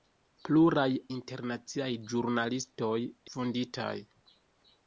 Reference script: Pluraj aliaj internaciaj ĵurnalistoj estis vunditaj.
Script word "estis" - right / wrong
wrong